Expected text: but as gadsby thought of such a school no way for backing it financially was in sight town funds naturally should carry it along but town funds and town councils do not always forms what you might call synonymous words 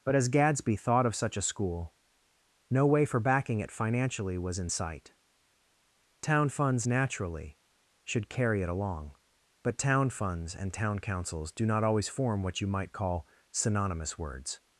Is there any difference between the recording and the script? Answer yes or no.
yes